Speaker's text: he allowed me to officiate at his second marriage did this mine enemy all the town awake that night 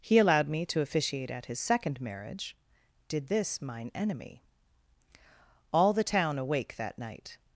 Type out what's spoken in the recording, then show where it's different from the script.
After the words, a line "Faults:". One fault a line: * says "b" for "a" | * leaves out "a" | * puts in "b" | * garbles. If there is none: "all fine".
he allowed me to officiate at his second marriage did this mine enemy all the town awake that night
Faults:
all fine